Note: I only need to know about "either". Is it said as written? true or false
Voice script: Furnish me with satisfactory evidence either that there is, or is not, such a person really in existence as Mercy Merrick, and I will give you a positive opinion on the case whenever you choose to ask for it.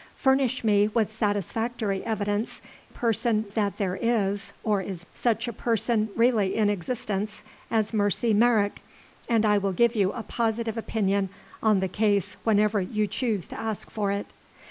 false